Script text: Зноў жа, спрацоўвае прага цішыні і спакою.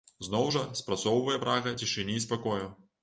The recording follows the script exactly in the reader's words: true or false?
true